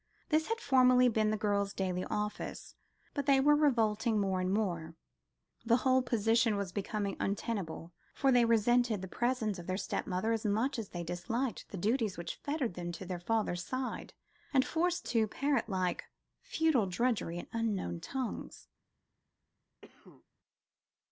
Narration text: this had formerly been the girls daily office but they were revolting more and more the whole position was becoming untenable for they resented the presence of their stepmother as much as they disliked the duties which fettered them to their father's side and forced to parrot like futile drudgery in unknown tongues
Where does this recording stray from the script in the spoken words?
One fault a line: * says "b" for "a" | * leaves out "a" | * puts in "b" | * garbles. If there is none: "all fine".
all fine